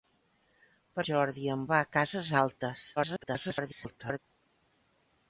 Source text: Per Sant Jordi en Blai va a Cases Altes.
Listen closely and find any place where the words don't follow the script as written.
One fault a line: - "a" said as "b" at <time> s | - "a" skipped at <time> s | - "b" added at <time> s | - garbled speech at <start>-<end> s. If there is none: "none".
- "Sant" skipped at 1.0 s
- "Blai" skipped at 1.7 s
- garbled speech at 3.0-4.2 s